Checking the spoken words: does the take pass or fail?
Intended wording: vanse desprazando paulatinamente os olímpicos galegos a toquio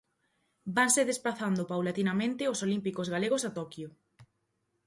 pass